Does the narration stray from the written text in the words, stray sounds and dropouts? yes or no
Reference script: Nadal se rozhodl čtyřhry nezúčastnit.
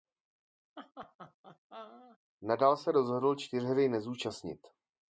yes